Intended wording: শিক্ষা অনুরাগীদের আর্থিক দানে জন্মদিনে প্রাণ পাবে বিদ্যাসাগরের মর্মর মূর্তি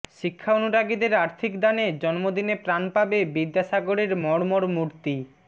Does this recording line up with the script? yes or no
yes